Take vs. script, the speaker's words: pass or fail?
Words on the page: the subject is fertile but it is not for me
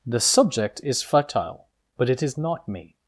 fail